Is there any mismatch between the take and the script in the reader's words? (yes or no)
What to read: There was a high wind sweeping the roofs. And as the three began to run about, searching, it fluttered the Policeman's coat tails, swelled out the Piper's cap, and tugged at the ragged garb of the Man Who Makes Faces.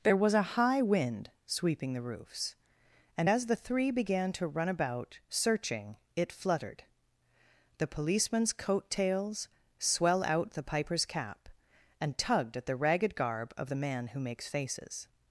yes